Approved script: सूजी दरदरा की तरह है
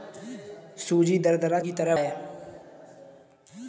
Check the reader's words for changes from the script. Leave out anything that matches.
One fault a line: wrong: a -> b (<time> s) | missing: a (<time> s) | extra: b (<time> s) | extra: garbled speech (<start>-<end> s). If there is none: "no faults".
no faults